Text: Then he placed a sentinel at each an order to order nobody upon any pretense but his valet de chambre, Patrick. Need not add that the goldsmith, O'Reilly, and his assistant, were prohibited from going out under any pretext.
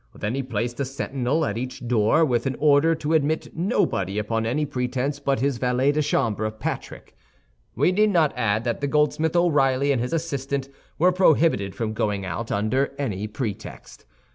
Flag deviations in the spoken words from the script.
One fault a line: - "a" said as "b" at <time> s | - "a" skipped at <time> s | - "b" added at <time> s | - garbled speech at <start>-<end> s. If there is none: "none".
- "door with" added at 1.9 s
- "order" said as "admit" at 3.1 s
- "We" added at 7.8 s